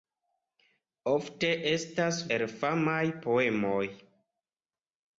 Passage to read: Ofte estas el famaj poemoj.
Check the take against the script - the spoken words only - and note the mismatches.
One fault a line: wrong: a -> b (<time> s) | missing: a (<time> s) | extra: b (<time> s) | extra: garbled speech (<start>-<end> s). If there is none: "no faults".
no faults